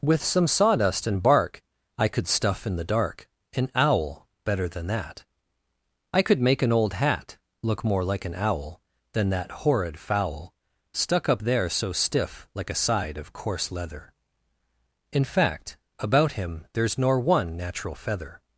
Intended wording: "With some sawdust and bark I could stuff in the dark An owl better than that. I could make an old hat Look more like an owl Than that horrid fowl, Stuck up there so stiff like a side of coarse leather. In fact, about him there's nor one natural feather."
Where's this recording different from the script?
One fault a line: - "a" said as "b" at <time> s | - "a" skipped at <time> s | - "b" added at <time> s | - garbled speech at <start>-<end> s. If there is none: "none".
none